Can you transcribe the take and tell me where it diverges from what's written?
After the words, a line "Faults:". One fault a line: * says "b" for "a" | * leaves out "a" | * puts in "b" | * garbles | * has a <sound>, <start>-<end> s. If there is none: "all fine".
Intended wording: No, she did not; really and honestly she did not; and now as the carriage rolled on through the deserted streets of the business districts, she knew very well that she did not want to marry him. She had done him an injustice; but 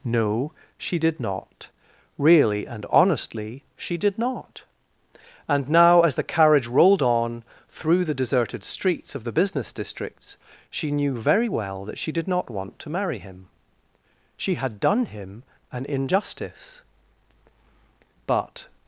No, she did not; really and honestly she did not; and now as the carriage rolled on through the deserted streets of the business districts, she knew very well that she did not want to marry him. She had done him an injustice; but
Faults:
all fine